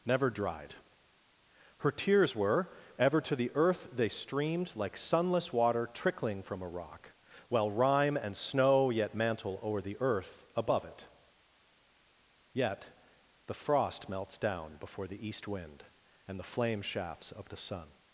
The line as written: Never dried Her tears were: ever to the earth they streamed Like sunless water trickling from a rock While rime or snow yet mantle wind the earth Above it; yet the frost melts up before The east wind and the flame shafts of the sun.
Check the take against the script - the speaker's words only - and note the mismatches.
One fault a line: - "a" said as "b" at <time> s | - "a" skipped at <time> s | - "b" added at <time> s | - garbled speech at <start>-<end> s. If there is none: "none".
- "or" said as "and" at 8.2 s
- "wind" said as "o'er" at 9.6 s
- "up" said as "down" at 14.4 s